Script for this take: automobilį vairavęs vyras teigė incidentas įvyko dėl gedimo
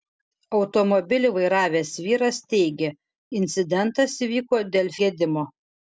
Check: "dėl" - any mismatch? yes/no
no